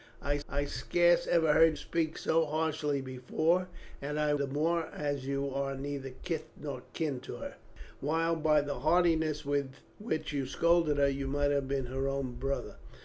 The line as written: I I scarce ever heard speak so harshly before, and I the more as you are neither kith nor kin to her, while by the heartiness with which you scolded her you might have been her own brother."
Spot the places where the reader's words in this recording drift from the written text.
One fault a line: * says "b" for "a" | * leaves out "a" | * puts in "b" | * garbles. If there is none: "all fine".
all fine